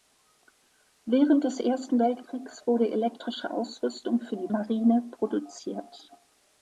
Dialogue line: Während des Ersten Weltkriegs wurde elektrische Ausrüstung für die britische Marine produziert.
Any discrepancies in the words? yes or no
yes